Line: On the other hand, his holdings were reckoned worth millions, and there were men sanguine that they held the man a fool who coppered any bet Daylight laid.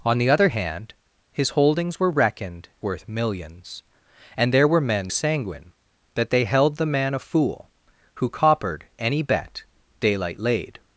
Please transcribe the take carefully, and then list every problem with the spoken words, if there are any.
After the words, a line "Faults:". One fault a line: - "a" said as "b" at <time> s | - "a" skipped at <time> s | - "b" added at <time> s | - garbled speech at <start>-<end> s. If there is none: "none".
On the other hand, his holdings were reckoned worth millions, and there were men sanguine that they held the man a fool who coppered any bet Daylight laid.
Faults:
none